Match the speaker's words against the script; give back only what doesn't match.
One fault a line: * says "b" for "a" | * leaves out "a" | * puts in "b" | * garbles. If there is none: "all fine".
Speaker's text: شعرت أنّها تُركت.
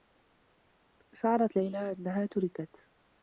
* puts in "ليلى"